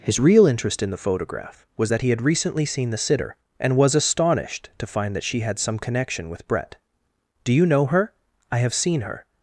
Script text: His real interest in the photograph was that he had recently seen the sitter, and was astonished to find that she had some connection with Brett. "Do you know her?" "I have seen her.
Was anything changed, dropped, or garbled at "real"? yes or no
no